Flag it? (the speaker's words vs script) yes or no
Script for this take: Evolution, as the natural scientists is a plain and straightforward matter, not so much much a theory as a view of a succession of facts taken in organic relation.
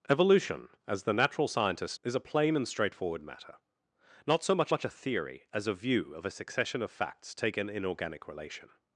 no